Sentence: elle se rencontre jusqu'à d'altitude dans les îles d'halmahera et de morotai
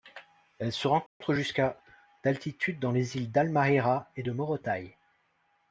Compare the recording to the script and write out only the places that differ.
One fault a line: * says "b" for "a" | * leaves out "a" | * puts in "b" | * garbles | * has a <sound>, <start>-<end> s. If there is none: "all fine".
* has a dropout, 1.1-1.2 s